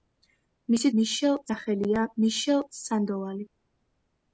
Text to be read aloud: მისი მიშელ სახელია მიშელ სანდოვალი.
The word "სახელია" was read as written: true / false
true